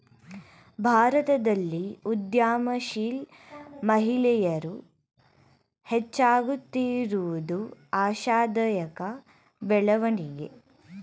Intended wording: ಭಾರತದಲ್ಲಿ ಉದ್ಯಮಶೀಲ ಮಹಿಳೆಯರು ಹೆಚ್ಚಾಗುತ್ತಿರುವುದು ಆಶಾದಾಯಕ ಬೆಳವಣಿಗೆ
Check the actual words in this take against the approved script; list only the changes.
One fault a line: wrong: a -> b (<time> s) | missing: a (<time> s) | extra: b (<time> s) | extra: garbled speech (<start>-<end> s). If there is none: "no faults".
no faults